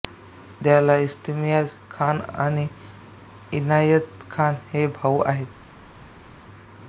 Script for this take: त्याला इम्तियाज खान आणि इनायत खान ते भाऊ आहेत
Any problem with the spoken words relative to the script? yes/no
yes